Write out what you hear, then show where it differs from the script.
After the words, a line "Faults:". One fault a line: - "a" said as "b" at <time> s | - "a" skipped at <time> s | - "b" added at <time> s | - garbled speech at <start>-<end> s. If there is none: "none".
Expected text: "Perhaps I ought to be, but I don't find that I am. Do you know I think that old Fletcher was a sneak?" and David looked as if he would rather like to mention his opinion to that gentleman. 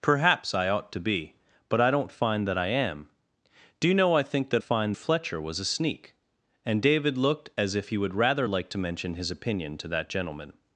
"Perhaps I ought to be, but I don't find that I am. Do you know I think that find Fletcher was a sneak?" and David looked as if he would rather like to mention his opinion to that gentleman.
Faults:
- "old" said as "find" at 4.6 s